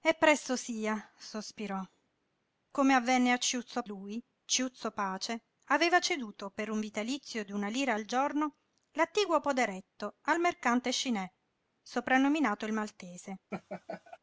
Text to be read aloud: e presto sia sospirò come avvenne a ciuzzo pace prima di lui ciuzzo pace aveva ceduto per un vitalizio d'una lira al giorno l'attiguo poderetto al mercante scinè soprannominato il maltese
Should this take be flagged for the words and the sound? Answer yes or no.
yes